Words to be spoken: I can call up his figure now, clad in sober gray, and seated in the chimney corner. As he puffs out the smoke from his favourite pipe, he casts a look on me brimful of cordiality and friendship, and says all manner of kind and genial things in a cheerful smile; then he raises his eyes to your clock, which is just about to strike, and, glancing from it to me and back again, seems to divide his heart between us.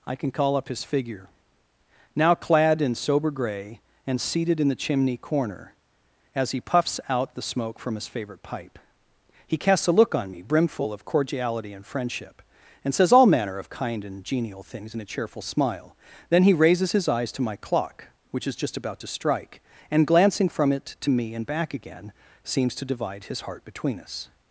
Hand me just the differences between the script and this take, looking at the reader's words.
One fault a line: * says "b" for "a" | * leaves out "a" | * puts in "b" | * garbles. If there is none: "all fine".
* says "my" for "your"